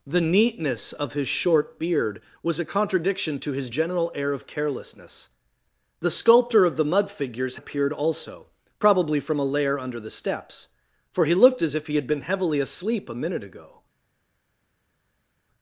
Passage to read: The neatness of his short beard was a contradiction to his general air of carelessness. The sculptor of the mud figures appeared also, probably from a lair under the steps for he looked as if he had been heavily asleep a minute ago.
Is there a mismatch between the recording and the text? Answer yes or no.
no